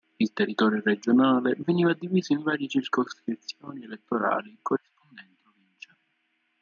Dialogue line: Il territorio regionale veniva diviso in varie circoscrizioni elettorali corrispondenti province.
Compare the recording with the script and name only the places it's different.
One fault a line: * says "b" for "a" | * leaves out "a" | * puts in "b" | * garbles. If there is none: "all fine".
all fine